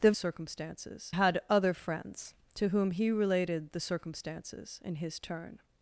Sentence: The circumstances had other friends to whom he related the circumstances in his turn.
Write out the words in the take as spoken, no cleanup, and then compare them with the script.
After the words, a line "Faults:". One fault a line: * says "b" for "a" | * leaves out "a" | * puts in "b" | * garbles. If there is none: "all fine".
The circumstances had other friends to whom he related the circumstances in his turn.
Faults:
all fine